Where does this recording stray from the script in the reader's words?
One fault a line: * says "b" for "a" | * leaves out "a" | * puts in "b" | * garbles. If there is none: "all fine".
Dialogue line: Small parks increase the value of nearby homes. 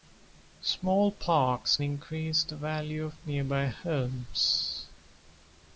all fine